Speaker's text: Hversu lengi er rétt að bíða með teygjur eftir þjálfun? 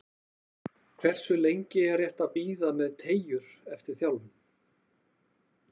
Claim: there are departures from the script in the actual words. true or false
false